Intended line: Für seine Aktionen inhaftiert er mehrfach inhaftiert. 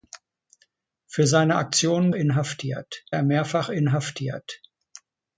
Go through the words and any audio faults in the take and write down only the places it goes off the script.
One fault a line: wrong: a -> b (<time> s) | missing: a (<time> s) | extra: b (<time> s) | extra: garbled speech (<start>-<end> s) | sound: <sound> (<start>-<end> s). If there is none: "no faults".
no faults